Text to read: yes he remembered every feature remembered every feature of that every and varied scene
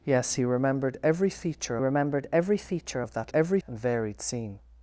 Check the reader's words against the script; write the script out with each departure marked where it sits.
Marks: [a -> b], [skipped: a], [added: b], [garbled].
yes he remembered every feature remembered every feature of that every and varied scene